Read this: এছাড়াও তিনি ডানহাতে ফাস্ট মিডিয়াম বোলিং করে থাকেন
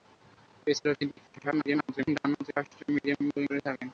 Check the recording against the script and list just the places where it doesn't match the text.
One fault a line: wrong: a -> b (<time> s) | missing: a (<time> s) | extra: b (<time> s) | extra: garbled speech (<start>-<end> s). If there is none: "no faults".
extra: garbled speech (1.3-2.1 s)